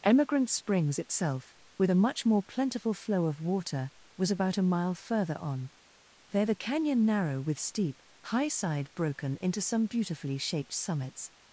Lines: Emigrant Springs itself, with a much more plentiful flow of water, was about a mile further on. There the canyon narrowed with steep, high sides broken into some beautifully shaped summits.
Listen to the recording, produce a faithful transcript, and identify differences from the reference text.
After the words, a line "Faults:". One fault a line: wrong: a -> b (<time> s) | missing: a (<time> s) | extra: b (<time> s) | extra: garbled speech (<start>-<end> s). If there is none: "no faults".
Emigrant Springs itself, with a much more plentiful flow of water, was about a mile further on. There the canyon narrow with steep, high side broken into some beautifully shaped summits.
Faults:
wrong: narrowed -> narrow (7.0 s)
wrong: sides -> side (8.5 s)